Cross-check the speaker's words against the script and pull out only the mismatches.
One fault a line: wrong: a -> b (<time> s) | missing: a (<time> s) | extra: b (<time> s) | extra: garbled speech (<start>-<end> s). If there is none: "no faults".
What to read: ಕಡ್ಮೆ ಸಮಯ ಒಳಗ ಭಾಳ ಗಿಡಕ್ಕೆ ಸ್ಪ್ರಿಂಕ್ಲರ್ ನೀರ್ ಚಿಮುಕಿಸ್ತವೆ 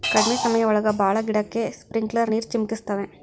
no faults